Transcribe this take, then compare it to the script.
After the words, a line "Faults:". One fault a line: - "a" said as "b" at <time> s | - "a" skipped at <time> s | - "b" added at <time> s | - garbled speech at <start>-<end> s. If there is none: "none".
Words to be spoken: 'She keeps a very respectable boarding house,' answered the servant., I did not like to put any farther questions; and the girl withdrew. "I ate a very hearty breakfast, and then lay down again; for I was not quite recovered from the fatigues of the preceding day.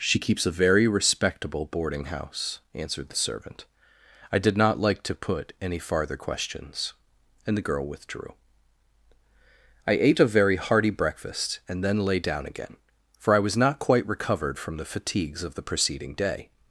'She keeps a very respectable boarding house,' answered the servant., I did not like to put any farther questions; and the girl withdrew. "I ate a very hearty breakfast, and then lay down again; for I was not quite recovered from the fatigues of the preceding day.
Faults:
none